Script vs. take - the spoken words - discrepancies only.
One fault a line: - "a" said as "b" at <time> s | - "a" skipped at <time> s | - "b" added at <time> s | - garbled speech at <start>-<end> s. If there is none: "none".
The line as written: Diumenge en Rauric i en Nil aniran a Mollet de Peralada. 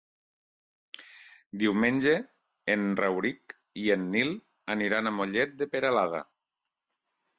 none